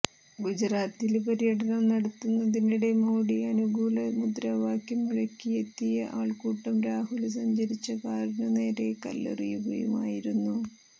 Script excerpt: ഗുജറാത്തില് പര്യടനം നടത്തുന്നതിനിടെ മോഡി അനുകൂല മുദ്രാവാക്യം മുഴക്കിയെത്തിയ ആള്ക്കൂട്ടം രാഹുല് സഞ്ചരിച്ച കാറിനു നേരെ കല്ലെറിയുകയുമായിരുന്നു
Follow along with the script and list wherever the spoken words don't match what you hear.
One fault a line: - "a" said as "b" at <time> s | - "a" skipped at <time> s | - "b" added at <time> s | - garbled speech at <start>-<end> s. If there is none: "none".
none